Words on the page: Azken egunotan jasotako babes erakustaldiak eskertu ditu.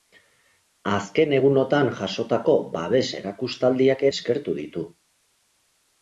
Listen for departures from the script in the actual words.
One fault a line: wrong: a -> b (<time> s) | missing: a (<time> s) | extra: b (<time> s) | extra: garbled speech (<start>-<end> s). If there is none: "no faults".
no faults